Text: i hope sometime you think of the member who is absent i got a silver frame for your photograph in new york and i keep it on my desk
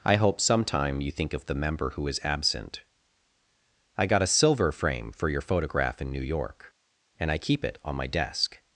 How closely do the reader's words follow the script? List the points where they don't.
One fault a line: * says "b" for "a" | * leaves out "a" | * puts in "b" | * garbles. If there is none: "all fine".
all fine